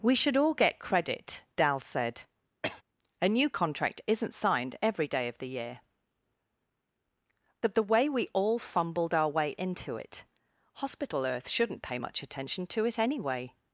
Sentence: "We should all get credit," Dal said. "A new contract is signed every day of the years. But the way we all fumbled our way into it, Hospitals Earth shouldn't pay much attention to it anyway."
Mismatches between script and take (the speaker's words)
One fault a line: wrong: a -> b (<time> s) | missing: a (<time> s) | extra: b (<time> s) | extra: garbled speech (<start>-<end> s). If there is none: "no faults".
wrong: is -> isn't (4.1 s)
wrong: years -> year (5.5 s)
wrong: Hospitals -> Hospital (10.7 s)